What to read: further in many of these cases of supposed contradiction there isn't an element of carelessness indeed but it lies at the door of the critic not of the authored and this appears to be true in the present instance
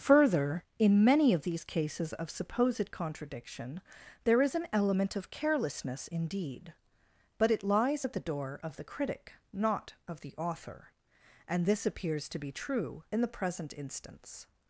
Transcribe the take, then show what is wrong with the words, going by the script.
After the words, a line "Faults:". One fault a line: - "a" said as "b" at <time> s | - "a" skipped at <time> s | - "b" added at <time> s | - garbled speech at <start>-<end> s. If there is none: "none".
further in many of these cases of supposed contradiction there is an element of carelessness indeed but it lies at the door of the critic not of the author and this appears to be true in the present instance
Faults:
- "isn't" said as "is" at 4.4 s
- "authored" said as "author" at 10.4 s